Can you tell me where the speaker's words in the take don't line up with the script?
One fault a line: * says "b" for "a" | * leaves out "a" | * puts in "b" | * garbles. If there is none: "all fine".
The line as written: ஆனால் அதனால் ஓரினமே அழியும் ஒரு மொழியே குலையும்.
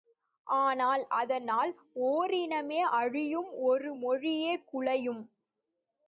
all fine